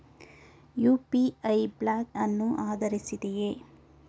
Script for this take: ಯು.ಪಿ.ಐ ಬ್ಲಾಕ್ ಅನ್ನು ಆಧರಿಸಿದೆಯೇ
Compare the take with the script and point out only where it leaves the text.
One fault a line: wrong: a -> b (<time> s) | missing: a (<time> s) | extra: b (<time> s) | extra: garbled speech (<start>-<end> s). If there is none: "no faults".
no faults